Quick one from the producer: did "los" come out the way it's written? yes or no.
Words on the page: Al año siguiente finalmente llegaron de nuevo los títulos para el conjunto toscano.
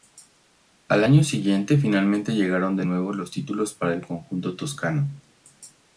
yes